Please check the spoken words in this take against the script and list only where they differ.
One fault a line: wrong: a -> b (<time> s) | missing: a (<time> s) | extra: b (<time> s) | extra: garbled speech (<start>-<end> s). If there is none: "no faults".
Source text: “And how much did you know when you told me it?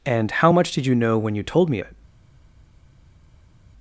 no faults